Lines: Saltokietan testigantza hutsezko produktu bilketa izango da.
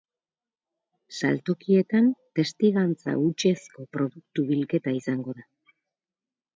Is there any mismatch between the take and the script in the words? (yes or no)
no